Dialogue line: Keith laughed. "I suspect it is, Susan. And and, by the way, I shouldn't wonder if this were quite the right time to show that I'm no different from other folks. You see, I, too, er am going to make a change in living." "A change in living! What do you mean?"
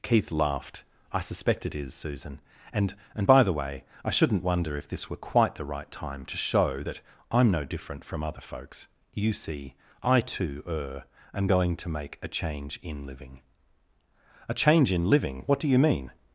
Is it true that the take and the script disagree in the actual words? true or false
false